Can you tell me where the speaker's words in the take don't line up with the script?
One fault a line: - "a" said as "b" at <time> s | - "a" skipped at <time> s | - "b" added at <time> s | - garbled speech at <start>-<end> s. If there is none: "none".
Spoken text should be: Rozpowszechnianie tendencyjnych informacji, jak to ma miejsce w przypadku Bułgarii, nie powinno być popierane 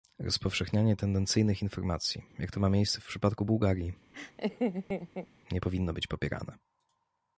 none